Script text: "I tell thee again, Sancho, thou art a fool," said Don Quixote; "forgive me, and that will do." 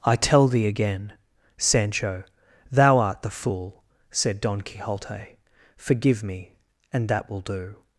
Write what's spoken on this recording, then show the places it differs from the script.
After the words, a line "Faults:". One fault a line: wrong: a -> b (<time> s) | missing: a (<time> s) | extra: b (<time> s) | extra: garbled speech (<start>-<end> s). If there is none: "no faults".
"I tell thee again, Sancho, thou art the fool," said Don Quixote; "forgive me, and that will do."
Faults:
wrong: a -> the (3.2 s)